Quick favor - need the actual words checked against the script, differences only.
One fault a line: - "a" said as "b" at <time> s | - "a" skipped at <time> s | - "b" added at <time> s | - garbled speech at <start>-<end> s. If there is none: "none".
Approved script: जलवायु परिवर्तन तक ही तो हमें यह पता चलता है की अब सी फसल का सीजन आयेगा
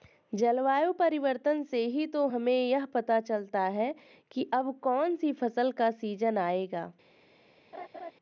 - "तक" said as "से" at 1.6 s
- "कौन" added at 4.8 s